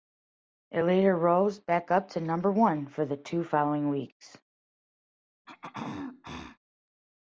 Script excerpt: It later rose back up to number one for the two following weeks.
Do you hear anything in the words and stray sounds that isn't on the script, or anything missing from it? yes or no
yes